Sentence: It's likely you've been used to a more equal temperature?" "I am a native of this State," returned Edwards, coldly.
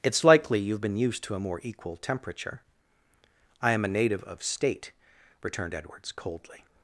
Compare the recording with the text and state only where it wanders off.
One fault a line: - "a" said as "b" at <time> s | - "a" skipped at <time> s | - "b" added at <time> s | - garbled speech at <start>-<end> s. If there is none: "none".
- "this" skipped at 4.4 s